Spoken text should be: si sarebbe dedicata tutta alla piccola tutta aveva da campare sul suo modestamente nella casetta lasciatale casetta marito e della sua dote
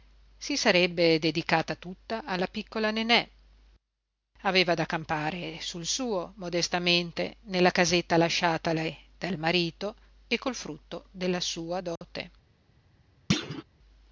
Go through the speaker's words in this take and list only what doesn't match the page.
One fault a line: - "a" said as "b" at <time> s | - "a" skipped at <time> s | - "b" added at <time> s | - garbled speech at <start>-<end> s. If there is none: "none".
- "tutta" said as "nenè" at 2.9 s
- "casetta" said as "dal" at 9.2 s
- "col frutto" added at 10.4 s